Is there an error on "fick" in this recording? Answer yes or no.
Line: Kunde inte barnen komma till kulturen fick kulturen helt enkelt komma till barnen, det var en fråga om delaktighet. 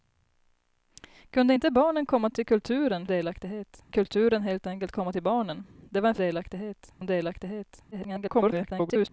yes